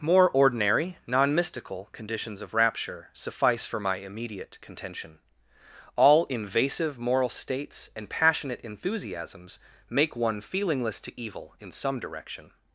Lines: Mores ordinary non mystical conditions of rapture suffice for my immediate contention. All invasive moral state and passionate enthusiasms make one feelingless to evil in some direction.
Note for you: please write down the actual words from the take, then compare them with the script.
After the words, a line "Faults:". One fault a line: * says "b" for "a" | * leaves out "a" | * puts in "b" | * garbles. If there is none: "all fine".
More ordinary non mystical conditions of rapture suffice for my immediate contention. All invasive moral states and passionate enthusiasms make one feelingless to evil in some direction.
Faults:
* says "More" for "Mores"
* says "states" for "state"